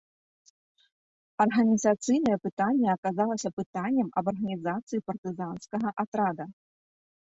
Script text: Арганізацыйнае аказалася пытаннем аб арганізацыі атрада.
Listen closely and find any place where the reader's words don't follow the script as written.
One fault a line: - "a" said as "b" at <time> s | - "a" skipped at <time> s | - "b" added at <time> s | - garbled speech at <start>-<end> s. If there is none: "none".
- "пытанне" added at 2.5 s
- "партызанскага" added at 5.1 s